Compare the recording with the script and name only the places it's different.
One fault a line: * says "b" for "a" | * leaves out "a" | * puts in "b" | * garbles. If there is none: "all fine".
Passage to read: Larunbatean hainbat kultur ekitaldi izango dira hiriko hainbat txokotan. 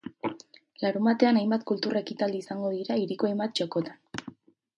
all fine